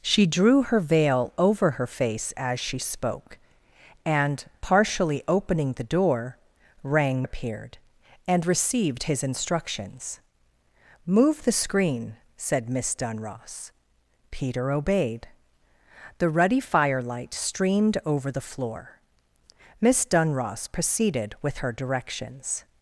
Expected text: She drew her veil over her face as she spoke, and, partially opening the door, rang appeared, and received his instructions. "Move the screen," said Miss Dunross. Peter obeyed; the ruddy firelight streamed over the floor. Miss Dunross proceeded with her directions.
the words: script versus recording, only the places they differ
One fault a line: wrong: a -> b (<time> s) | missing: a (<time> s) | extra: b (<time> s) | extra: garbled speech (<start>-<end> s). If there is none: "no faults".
no faults